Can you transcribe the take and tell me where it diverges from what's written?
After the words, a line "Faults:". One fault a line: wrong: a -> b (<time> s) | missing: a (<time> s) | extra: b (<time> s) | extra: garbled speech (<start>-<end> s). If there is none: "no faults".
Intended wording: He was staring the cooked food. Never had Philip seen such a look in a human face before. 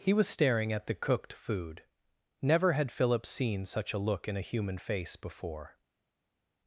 He was staring at the cooked food. Never had Philip seen such a look in a human face before.
Faults:
extra: at (0.7 s)